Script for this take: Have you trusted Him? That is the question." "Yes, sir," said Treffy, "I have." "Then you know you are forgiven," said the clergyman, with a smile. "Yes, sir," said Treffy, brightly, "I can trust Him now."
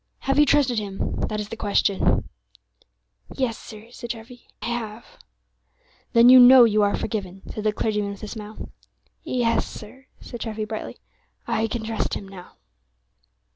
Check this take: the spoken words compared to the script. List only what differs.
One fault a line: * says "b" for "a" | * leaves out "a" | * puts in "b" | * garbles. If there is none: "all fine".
* leaves out "I"